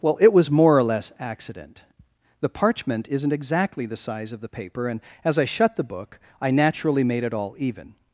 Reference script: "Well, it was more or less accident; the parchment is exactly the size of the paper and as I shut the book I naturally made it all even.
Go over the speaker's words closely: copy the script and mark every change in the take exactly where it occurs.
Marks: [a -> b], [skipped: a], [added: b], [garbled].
"Well, it was more or less accident; the parchment [is -> isn't] exactly the size of the paper and as I shut the book I naturally made it all even.